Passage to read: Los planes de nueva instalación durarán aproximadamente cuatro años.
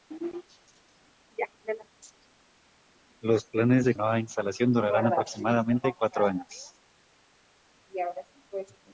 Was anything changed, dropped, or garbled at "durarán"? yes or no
no